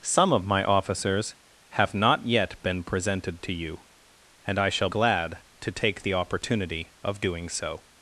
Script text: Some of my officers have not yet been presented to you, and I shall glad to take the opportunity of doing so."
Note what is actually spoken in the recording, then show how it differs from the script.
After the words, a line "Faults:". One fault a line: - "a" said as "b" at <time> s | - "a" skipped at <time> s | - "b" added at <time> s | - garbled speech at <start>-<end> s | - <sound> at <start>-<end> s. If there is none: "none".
Some of my officers have not yet been presented to you, and I shall glad to take the opportunity of doing so."
Faults:
none